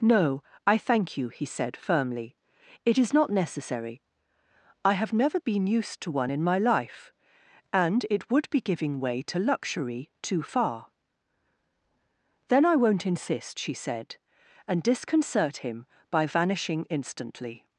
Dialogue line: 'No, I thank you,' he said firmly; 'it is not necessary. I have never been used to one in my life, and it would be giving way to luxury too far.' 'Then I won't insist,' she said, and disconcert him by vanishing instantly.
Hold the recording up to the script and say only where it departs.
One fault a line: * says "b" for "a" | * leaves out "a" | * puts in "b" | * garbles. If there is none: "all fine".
all fine